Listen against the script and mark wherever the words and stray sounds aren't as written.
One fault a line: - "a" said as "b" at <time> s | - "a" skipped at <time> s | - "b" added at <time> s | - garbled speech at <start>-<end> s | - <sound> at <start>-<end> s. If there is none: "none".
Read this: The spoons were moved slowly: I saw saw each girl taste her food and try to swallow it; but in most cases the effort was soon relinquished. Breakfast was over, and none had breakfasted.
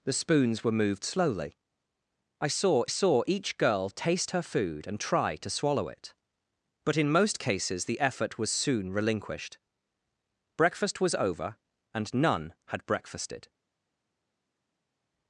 none